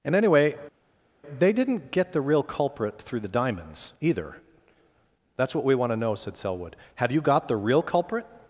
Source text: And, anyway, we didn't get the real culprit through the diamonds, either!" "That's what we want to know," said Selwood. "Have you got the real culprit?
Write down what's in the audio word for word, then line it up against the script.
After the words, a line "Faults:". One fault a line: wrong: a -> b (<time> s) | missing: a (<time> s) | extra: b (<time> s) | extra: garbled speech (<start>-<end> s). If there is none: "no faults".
And, anyway, they didn't get the real culprit through the diamonds, either!" "That's what we want to know," said Selwood. "Have you got the real culprit?
Faults:
wrong: we -> they (1.4 s)